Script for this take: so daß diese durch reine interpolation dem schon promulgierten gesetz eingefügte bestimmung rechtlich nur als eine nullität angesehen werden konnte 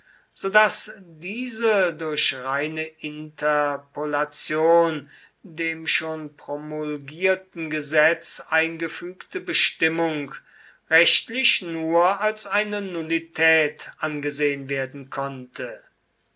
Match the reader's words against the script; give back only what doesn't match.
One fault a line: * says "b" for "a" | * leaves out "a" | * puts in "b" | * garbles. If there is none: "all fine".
all fine